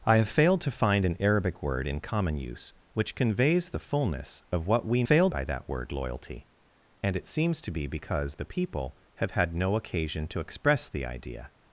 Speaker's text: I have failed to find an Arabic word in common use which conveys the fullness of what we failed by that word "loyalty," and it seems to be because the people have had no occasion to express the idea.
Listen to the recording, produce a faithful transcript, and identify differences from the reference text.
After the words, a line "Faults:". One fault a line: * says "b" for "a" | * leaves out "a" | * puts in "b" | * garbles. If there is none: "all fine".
I have failed to find an Arabic word in common use which conveys the fullness of what we failed by that word "loyalty," and it seems to be because the people have had no occasion to express the idea.
Faults:
all fine